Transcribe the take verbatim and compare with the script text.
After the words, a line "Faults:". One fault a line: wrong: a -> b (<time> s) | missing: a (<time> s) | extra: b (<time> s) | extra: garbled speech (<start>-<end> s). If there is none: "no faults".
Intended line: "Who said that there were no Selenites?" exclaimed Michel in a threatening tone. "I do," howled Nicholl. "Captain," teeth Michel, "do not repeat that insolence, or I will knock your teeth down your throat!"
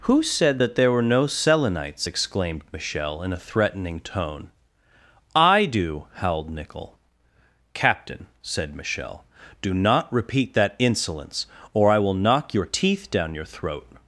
"Who said that there were no Selenites?" exclaimed Michel in a threatening tone. "I do," howled Nicholl. "Captain," said Michel, "do not repeat that insolence, or I will knock your teeth down your throat!"
Faults:
wrong: teeth -> said (8.4 s)